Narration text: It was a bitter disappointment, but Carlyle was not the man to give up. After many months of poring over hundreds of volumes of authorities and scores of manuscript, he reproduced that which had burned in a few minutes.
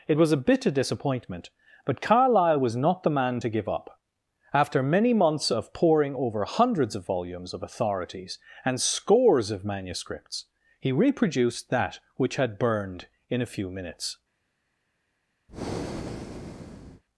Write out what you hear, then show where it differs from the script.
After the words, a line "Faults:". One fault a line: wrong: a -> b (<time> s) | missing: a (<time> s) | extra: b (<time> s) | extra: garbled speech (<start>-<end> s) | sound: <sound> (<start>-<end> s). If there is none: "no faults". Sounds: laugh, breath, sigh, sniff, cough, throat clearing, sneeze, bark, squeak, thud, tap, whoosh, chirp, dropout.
It was a bitter disappointment, but Carlyle was not the man to give up. After many months of poring over hundreds of volumes of authorities and scores of manuscripts, he reproduced that which had burned in a few minutes.
Faults:
wrong: manuscript -> manuscripts (9.7 s)
sound: breath (15.5-17.0 s)